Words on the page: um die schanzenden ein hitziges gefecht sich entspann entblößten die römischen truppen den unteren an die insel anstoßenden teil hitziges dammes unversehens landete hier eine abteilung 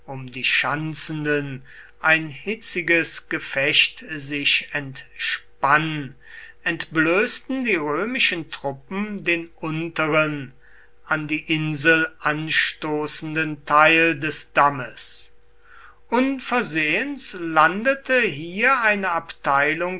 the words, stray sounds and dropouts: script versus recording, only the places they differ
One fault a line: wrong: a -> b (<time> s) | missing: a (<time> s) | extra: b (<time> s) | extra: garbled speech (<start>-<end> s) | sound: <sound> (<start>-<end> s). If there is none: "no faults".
wrong: hitziges -> des (14.2 s)